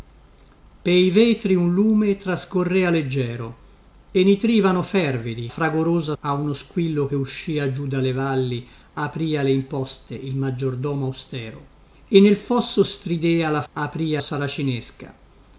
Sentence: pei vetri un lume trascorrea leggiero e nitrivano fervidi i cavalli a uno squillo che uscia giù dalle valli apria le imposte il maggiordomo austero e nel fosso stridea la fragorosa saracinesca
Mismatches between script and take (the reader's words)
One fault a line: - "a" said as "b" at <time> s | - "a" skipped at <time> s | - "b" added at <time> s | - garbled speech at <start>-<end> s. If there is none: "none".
- "cavalli" said as "fragorosa" at 5.5 s
- "fragorosa" said as "apria" at 13.7 s